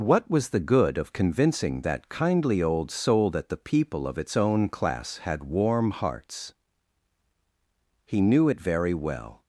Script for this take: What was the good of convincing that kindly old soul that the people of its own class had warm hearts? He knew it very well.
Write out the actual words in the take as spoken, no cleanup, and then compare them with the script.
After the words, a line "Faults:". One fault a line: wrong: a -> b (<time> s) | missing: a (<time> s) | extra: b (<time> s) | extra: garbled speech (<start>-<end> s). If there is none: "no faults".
What was the good of convincing that kindly old soul that the people of its own class had warm hearts? He knew it very well.
Faults:
no faults